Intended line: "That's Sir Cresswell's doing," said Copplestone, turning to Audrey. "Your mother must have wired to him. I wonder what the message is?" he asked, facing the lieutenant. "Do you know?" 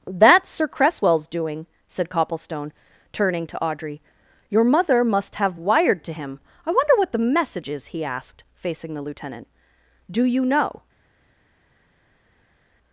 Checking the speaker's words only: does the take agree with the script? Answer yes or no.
yes